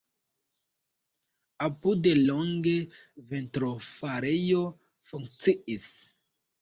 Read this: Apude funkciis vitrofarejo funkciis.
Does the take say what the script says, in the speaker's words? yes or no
no